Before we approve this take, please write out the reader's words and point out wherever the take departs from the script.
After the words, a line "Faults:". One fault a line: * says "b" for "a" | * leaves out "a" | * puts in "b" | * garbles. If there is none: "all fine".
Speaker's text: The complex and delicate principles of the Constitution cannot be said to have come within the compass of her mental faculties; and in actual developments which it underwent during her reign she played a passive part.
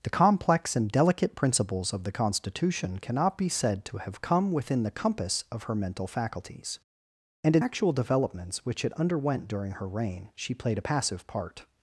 The complex and delicate principles of the Constitution cannot be said to have come within the compass of her mental faculties; and in actual developments which it underwent during her reign she played a passive part.
Faults:
all fine